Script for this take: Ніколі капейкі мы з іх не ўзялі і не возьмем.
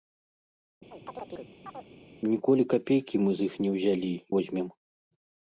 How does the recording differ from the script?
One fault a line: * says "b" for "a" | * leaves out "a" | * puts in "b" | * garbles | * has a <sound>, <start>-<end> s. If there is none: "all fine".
* has a chirp, 0.9-1.9 s
* leaves out "і не"